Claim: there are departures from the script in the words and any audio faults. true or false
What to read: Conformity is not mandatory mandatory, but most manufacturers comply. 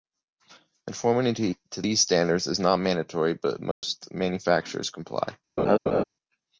true